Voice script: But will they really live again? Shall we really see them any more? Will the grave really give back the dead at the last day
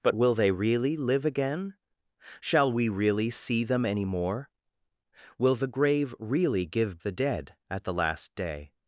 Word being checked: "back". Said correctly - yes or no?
no